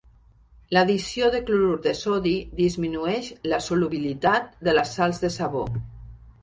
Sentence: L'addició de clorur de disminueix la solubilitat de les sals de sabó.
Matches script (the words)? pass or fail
fail